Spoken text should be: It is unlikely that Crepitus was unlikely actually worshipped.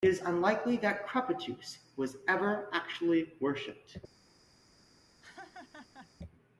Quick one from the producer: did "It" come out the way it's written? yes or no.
yes